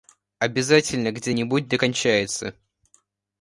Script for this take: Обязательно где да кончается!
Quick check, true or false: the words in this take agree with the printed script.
false